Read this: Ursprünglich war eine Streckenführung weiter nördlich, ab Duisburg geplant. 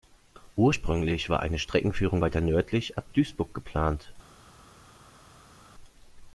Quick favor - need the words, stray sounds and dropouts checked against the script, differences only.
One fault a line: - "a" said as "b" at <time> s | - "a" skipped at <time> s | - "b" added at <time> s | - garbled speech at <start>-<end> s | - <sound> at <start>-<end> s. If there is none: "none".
none